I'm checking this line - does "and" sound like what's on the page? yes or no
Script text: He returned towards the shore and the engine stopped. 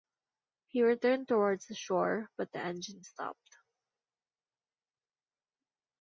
no